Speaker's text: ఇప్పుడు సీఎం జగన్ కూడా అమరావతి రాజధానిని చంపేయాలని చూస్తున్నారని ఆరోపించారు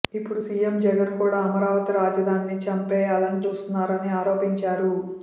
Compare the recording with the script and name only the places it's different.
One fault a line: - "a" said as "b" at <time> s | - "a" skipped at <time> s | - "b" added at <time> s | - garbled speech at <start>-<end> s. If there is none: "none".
none